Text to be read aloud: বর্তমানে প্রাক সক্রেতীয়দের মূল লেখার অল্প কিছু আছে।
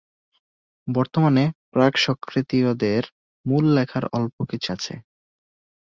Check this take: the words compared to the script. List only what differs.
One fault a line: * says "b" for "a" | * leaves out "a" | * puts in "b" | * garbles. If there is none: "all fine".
all fine